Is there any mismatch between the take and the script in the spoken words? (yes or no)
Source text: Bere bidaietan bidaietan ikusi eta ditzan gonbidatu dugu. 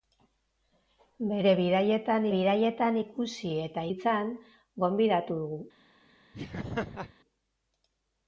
no